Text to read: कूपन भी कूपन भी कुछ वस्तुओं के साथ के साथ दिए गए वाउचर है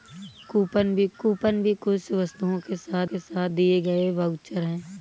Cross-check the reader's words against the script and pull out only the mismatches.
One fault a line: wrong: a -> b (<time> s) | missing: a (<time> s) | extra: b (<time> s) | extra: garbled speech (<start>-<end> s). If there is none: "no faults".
no faults